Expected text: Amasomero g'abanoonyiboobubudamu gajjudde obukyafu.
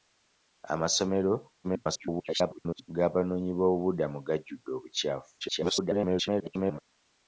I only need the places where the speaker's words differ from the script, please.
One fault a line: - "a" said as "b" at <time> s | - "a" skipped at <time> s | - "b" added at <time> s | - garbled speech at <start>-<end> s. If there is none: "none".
- garbled speech at 1.6-2.9 s
- garbled speech at 5.4-6.8 s